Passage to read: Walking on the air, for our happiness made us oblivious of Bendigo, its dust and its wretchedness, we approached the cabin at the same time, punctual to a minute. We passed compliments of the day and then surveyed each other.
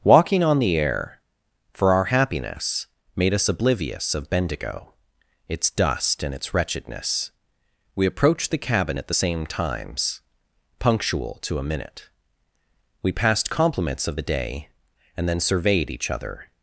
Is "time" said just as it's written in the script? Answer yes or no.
no